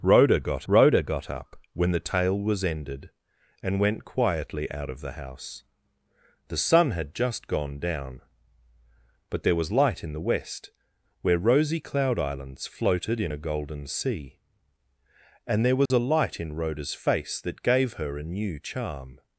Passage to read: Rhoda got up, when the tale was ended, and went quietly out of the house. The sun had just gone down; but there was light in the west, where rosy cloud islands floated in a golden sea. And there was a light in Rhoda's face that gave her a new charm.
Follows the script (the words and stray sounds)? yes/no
no